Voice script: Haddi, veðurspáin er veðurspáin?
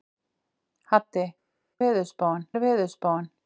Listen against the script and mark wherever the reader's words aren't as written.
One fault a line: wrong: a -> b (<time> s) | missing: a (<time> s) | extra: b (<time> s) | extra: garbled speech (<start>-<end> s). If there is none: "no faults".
no faults